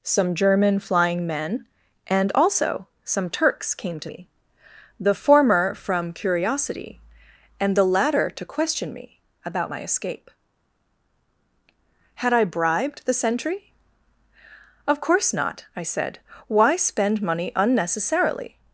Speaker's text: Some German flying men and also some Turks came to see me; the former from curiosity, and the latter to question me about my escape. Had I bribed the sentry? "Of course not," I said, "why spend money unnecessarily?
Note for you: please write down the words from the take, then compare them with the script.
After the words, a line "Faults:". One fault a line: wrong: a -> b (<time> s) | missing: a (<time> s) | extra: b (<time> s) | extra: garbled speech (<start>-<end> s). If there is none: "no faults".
Some German flying men and also some Turks came to me; the former from curiosity, and the latter to question me about my escape. Had I bribed the sentry? "Of course not," I said, "why spend money unnecessarily?
Faults:
missing: see (4.1 s)